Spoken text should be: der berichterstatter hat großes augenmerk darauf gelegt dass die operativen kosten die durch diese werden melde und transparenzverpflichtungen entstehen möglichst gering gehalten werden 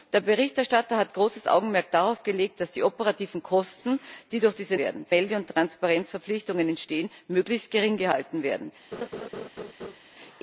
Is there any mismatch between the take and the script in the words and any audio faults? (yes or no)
yes